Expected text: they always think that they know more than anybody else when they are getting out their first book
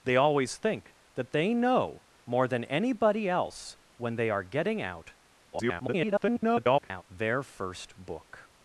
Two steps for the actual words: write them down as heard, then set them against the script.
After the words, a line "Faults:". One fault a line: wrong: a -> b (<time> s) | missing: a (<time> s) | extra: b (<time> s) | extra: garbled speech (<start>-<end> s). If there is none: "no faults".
they always think that they know more than anybody else when they are getting out [garbled] their first book
Faults:
extra: garbled speech (5.5-7.0 s)